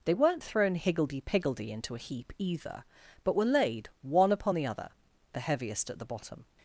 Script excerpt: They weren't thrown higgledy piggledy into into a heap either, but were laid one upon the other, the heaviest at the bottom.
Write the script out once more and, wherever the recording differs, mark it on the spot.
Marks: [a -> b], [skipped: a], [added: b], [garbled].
They weren't thrown higgledy piggledy into [skipped: into] a heap either, but were laid one upon the other, the heaviest at the bottom.